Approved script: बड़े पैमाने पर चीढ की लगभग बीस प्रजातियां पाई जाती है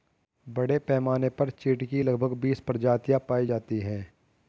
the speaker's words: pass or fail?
pass